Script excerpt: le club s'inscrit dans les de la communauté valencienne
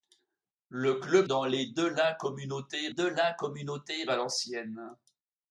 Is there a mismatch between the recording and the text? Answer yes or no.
yes